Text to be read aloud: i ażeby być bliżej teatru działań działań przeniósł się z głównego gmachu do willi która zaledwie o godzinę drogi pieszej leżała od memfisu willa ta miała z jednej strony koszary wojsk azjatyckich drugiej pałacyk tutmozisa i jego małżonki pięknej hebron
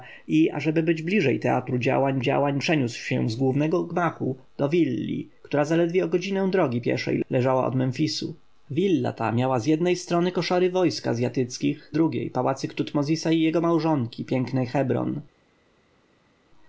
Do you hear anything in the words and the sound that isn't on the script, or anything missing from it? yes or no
no